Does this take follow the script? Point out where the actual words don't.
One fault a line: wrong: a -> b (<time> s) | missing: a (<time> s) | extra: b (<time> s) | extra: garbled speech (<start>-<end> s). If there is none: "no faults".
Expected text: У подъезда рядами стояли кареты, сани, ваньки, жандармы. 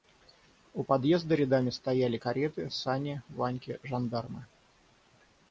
no faults